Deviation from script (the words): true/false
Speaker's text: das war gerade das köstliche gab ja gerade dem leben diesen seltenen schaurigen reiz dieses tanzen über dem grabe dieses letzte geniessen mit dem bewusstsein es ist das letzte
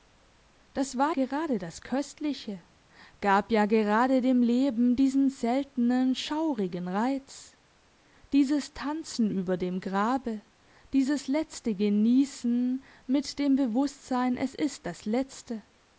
false